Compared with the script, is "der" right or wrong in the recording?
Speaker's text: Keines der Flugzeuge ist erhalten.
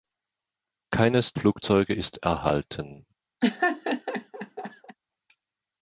wrong